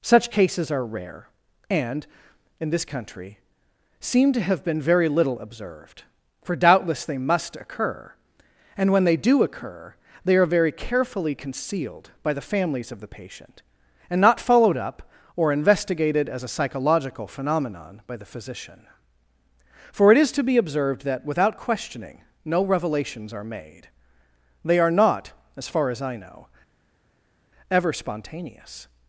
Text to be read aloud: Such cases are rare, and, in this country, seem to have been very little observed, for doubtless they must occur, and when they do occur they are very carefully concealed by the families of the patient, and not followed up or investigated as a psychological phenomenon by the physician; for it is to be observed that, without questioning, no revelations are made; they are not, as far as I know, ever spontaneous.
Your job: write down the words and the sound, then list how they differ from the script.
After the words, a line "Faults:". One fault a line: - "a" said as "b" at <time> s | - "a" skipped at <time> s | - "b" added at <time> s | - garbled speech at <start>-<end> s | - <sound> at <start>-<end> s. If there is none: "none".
Such cases are rare, and, in this country, seem to have been very little observed, for doubtless they must occur, and when they do occur they are very carefully concealed by the families of the patient, and not followed up or investigated as a psychological phenomenon by the physician; for it is to be observed that, without questioning, no revelations are made; they are not, as far as I know, ever spontaneous.
Faults:
none